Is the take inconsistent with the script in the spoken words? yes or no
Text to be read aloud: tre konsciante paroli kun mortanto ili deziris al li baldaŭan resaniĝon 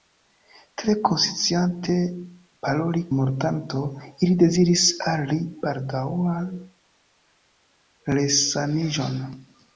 yes